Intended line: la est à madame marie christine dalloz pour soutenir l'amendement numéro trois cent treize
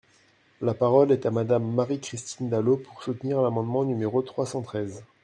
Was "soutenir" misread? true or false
false